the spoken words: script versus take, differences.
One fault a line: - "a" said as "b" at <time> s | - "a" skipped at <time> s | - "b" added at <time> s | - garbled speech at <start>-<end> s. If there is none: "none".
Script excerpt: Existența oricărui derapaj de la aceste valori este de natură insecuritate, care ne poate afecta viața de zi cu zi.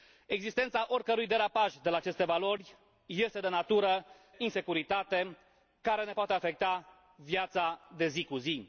none